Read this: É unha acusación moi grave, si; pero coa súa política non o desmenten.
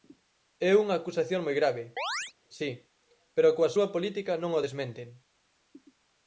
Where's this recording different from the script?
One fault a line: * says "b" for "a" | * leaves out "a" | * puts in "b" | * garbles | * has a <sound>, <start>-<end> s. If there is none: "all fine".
* has a chirp, 2.0-2.3 s